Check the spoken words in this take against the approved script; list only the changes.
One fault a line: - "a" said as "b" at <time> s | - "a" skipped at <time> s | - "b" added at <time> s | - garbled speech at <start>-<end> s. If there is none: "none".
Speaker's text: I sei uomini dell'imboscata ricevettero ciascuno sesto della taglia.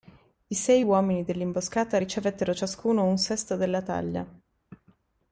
- "un" added at 3.0 s